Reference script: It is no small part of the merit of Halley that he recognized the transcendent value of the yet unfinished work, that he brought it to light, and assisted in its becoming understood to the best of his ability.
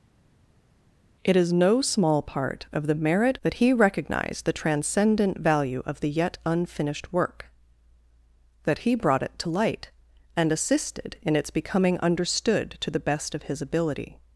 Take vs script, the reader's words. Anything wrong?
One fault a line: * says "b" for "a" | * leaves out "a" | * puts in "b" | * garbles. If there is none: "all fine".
* leaves out "of Halley"